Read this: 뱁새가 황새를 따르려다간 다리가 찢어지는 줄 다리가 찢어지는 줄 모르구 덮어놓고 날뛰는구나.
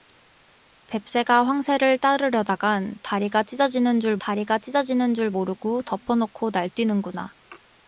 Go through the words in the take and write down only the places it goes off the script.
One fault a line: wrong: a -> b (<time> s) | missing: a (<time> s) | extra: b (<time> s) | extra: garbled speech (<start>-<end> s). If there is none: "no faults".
no faults